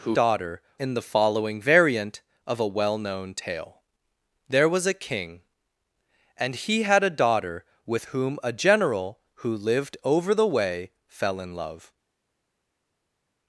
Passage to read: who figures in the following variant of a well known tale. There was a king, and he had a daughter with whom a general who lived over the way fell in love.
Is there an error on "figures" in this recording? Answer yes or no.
yes